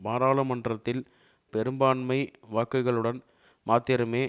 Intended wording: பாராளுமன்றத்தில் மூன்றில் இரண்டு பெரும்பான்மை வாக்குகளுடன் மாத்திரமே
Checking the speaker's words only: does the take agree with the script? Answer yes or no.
no